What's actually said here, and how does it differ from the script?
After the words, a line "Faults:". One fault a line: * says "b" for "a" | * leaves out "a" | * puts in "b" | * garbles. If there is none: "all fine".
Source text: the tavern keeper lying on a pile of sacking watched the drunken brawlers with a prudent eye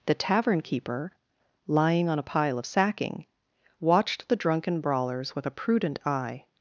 the tavern keeper lying on a pile of sacking watched the drunken brawlers with a prudent eye
Faults:
all fine